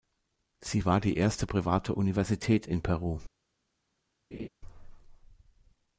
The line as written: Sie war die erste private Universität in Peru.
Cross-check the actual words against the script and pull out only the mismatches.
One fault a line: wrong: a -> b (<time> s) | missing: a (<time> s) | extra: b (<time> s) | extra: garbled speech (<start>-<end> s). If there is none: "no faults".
no faults